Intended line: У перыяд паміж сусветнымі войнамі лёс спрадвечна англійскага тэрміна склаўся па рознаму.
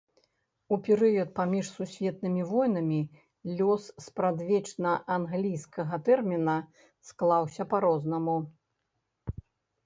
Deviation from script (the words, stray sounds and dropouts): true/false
false